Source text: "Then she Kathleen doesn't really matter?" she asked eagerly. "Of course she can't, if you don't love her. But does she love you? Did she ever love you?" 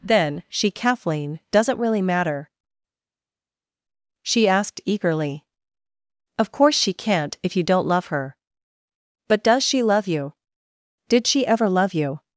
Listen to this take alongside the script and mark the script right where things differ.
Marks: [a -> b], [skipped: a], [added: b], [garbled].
"Then she Kathleen doesn't really matter?" she asked eagerly. "Of course she can't, if you don't love her. But does she love you? Did she ever love you?"